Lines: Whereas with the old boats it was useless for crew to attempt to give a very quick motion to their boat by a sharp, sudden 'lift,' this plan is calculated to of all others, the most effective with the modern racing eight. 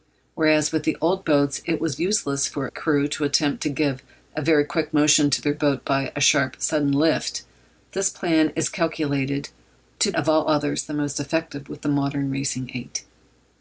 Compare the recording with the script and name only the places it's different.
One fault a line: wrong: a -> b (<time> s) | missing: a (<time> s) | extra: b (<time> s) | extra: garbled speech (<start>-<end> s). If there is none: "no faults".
no faults